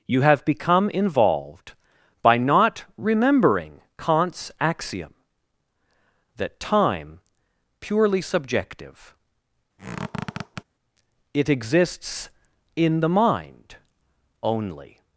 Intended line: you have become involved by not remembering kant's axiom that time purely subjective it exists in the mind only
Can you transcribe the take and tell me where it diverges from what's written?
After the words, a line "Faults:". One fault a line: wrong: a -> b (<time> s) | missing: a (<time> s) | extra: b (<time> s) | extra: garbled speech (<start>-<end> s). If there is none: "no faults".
you have become involved by not remembering kant's axiom that time purely subjective it exists in the mind only
Faults:
no faults